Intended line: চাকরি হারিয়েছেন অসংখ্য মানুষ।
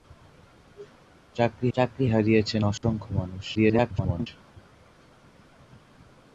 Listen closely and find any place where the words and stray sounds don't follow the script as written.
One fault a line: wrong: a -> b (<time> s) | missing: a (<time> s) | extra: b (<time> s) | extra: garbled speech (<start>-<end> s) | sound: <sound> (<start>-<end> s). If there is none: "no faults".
extra: চাকরি (1.7 s)
sound: dropout (2.8-2.8 s)
extra: garbled speech (3.5-4.3 s)